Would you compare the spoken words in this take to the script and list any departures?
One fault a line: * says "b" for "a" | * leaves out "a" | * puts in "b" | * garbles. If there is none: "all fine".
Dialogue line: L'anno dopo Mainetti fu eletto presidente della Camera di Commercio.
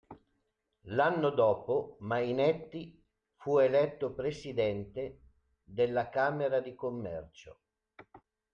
all fine